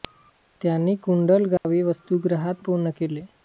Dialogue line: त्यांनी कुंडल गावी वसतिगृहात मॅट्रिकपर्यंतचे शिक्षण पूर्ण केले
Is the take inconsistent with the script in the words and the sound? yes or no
yes